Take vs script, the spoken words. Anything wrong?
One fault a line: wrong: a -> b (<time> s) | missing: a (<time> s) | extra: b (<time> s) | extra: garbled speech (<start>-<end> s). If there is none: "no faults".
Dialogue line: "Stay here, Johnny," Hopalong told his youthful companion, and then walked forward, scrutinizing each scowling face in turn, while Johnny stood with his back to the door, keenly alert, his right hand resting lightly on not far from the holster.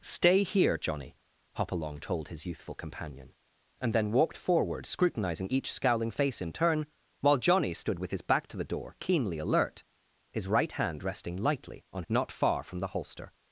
no faults